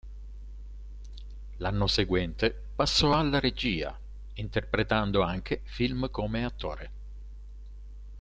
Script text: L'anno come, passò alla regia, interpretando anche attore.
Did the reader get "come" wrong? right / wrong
wrong